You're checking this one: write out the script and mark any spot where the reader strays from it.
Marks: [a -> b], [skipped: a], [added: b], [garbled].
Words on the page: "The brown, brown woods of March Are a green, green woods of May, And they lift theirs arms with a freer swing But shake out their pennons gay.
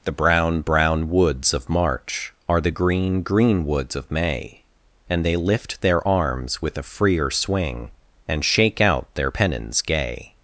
"The brown, brown woods of March Are [a -> the] green, green woods of May, And they lift [theirs -> their] arms with a freer swing [But -> And] shake out their pennons gay.